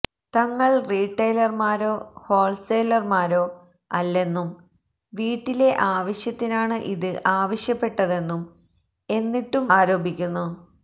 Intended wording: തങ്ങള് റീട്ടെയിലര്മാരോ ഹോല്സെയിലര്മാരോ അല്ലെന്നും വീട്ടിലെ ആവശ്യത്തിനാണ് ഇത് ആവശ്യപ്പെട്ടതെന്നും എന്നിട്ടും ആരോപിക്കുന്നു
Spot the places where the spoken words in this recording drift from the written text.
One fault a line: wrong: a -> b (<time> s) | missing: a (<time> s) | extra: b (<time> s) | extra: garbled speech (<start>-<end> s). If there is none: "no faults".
no faults